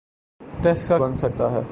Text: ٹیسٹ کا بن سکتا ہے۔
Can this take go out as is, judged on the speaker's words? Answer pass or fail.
pass